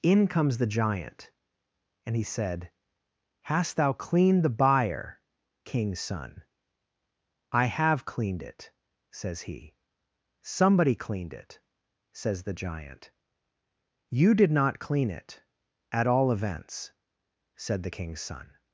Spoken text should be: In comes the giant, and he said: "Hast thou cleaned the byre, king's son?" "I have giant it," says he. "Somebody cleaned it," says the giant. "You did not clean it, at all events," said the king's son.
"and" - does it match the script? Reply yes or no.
yes